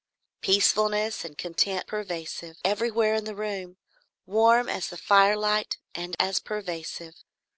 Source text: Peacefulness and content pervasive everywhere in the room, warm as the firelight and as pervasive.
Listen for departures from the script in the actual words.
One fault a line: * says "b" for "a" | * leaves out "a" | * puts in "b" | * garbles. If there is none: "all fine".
all fine